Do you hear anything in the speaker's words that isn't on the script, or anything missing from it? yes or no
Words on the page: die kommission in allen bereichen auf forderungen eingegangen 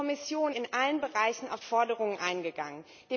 no